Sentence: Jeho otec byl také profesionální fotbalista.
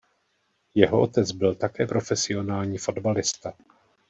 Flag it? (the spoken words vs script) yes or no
no